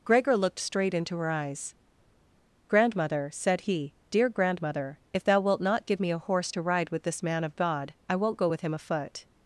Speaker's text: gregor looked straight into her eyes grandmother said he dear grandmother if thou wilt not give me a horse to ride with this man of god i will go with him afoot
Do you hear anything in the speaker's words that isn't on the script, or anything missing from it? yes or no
yes